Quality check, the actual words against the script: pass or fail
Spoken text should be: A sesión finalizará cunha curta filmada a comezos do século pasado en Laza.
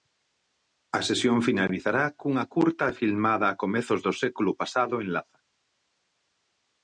pass